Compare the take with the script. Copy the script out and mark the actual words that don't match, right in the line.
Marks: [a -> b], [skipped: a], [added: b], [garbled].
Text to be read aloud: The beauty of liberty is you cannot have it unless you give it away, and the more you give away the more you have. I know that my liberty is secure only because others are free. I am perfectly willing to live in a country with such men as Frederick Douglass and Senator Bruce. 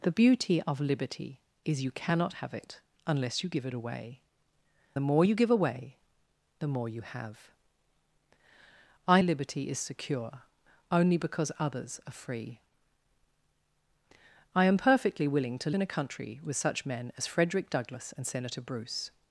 The beauty of liberty is you cannot have it unless you give it away, [skipped: and] the more you give away the more you have. I [skipped: know that my] liberty is secure only because others are free. I am perfectly willing to [skipped: live] in a country with such men as Frederick Douglass and Senator Bruce.